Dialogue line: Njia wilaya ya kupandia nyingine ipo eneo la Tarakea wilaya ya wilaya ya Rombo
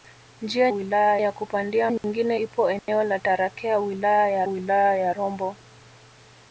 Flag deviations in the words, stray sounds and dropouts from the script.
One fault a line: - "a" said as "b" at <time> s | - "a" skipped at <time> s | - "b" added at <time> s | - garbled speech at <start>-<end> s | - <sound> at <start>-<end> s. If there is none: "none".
- dropout at 2.0-2.0 s
- dropout at 2.8-2.9 s